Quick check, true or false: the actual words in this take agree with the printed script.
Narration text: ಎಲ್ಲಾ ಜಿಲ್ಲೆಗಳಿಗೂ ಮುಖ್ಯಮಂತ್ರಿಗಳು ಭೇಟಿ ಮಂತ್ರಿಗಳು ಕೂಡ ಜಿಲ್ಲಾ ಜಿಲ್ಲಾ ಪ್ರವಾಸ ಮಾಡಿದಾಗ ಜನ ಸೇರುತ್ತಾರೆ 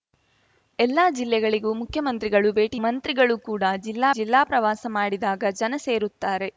true